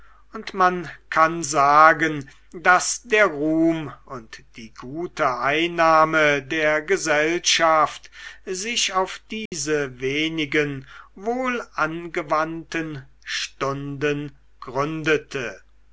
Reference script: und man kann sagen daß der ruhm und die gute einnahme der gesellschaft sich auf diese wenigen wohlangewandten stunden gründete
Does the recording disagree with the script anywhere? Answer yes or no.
no